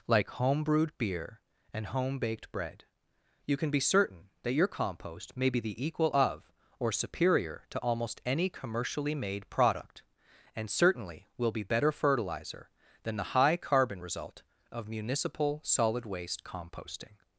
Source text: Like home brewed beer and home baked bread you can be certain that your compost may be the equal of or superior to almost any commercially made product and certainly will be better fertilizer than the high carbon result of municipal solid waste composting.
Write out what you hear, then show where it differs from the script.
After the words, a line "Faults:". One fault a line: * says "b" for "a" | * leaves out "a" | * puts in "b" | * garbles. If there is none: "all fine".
Like home brewed beer and home baked bread you can be certain that your compost may be the equal of or superior to almost any commercially made product and certainly will be better fertilizer than the high carbon result of municipal solid waste composting.
Faults:
all fine